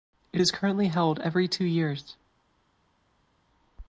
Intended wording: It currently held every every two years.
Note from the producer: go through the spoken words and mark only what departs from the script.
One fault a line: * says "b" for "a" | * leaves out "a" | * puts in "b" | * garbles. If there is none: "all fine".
* puts in "is"
* leaves out "every"